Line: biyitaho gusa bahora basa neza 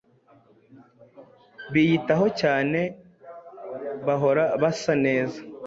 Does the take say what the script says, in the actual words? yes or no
no